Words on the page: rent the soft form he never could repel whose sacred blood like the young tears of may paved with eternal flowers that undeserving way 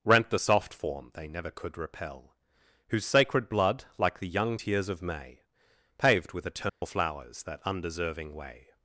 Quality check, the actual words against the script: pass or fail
fail